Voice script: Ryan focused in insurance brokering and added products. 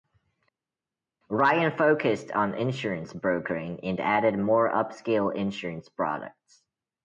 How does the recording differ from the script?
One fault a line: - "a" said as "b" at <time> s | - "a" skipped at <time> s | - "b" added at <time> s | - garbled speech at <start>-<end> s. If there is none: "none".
- "in" said as "on" at 2.3 s
- "more upscale insurance" added at 4.4 s